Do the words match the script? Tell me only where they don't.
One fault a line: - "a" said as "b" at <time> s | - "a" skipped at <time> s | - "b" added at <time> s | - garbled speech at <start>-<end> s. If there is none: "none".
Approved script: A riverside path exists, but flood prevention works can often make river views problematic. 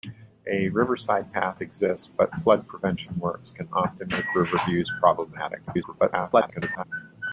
- garbled speech at 5.7-6.8 s